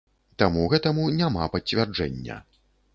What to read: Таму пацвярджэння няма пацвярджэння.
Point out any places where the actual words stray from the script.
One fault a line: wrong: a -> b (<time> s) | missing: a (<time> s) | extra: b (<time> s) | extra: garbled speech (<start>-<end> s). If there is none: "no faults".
wrong: пацвярджэння -> гэтаму (0.8 s)